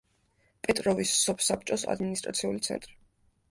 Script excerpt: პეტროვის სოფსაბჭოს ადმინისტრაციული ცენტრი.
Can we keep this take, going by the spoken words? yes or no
yes